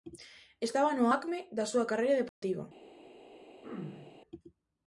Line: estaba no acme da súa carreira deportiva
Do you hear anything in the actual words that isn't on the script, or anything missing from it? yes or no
no